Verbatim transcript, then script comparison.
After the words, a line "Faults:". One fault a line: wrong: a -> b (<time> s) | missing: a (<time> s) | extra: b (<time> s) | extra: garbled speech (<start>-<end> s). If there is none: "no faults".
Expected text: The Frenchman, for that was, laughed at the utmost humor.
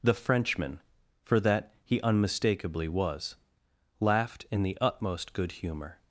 The Frenchman, for that he unmistakably was, laughed in the utmost good humor.
Faults:
extra: he unmistakably (1.9 s)
wrong: at -> in (4.5 s)
extra: good (5.3 s)